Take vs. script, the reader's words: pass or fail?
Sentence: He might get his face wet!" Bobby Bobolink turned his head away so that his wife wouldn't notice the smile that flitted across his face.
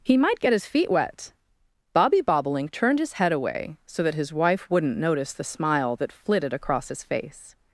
fail